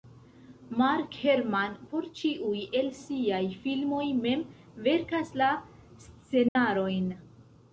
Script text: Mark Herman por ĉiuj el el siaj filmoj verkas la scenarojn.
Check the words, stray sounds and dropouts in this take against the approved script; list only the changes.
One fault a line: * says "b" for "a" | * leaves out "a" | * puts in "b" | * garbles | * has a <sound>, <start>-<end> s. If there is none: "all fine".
* leaves out "el"
* puts in "mem"
* has a dropout, 6.5-6.6 s